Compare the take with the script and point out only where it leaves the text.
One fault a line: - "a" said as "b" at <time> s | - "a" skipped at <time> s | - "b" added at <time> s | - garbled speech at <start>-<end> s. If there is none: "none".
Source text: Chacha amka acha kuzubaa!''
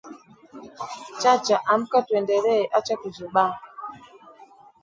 - "tuendelee" added at 2.0 s